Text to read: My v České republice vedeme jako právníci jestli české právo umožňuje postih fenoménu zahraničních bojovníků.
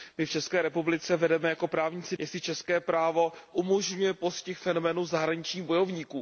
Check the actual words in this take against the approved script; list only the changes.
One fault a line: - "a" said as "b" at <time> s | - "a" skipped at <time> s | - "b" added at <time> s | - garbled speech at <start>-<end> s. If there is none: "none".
none